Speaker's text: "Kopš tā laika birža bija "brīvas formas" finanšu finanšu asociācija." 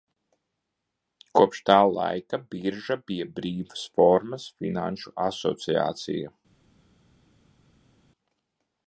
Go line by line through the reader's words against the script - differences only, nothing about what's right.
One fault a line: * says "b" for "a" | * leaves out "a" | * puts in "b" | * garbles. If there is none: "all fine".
* leaves out "finanšu"